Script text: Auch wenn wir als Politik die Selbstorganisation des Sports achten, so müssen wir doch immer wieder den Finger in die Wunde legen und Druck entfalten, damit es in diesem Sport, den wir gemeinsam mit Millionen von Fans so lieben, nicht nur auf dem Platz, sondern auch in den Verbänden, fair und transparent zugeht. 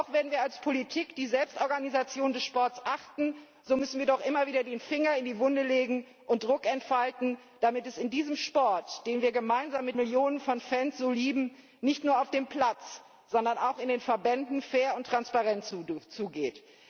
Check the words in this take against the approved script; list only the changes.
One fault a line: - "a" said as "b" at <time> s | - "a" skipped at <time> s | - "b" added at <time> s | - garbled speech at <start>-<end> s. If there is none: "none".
none